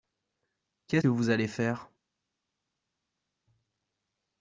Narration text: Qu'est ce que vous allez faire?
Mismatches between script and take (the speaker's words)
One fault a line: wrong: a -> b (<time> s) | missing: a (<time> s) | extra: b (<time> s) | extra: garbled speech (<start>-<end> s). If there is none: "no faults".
missing: ce (1.0 s)